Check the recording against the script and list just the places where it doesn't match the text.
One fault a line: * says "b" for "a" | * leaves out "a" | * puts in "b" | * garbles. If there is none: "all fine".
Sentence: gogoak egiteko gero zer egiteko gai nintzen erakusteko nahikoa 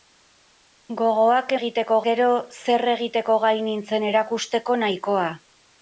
all fine